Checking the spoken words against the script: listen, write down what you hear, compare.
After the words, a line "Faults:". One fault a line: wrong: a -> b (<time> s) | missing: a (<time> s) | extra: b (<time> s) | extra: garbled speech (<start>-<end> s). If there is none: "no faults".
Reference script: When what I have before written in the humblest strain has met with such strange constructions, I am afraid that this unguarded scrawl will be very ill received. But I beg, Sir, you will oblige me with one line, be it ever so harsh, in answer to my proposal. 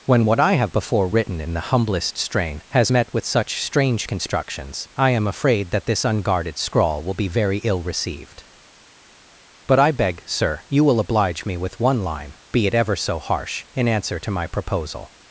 When what I have before written in the humblest strain has met with such strange constructions, I am afraid that this unguarded scrawl will be very ill received. But I beg, Sir, you will oblige me with one line, be it ever so harsh, in answer to my proposal.
Faults:
no faults